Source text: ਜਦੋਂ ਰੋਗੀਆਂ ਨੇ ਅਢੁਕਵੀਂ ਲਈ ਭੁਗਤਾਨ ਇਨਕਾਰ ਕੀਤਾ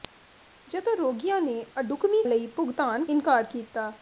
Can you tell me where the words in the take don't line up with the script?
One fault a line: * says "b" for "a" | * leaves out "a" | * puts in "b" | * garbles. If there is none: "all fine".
all fine